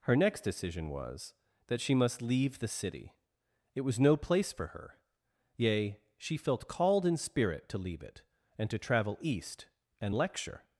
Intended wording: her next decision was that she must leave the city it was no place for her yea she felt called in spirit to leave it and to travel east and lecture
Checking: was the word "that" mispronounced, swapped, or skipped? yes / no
no